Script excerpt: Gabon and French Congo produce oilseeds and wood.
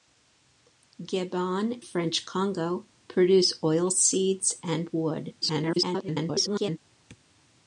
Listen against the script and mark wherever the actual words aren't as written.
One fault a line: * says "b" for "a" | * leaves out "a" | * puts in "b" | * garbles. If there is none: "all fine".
* leaves out "and"
* garbles